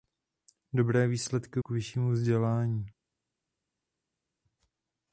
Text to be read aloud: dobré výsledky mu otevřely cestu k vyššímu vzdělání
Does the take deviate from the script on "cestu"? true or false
true